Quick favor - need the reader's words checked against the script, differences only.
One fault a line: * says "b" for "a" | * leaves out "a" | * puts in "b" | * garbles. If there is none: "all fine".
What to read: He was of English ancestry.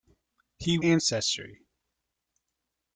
* leaves out "was of English"